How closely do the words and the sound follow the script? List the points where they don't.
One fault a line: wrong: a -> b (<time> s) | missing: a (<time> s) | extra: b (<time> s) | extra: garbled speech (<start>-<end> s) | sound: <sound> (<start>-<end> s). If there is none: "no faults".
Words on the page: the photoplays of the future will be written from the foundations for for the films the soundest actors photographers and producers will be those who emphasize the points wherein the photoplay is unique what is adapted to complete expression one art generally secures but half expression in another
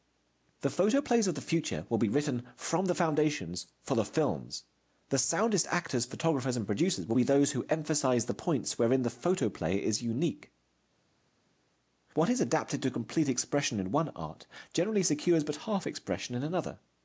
missing: for (3.9 s)
extra: in (13.8 s)